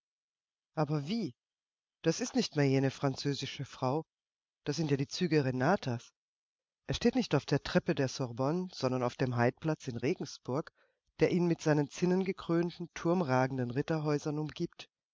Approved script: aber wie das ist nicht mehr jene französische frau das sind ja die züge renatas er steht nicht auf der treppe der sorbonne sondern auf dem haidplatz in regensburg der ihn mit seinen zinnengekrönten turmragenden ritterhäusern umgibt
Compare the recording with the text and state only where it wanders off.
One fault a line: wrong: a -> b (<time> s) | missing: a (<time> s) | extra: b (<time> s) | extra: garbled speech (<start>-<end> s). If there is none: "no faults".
no faults